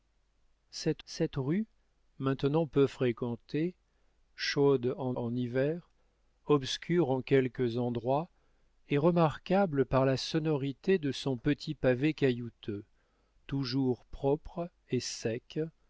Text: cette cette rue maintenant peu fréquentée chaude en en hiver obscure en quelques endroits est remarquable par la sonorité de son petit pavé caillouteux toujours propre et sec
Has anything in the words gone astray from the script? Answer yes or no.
no